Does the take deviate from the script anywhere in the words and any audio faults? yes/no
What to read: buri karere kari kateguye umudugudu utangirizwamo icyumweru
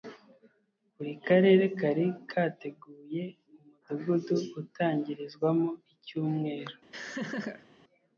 yes